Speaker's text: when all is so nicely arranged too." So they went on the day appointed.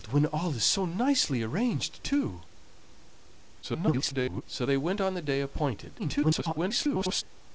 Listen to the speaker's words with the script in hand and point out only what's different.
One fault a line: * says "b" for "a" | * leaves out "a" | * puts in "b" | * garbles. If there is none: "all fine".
* garbles
* garbles